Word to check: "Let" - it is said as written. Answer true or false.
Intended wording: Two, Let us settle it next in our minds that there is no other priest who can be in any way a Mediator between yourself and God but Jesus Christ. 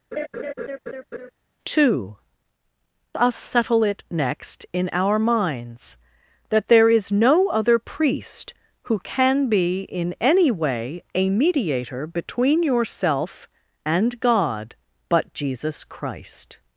false